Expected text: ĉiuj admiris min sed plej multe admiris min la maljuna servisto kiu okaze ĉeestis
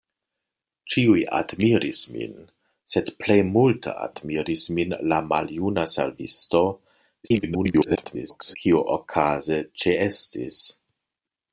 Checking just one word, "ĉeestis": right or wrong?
right